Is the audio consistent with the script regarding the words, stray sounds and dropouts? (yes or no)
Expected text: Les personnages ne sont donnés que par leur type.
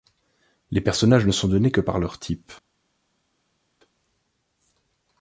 yes